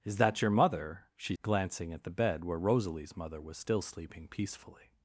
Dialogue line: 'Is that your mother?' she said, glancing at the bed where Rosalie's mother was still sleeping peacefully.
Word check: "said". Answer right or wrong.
wrong